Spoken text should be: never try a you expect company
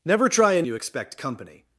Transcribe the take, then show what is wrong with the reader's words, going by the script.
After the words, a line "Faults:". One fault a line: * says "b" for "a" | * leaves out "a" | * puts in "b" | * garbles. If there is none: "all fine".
never try a you expect company
Faults:
all fine